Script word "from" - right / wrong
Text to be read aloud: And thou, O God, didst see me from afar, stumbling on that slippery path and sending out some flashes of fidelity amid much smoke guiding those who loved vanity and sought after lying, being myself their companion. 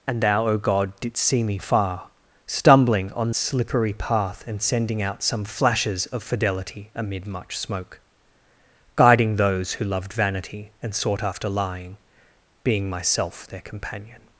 wrong